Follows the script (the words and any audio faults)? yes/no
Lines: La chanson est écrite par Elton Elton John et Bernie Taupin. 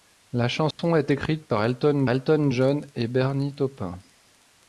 no